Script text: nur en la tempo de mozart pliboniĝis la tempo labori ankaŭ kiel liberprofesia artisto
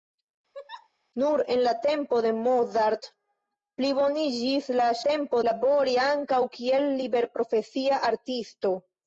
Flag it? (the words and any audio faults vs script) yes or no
yes